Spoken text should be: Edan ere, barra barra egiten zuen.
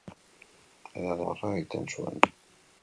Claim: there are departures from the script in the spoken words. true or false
true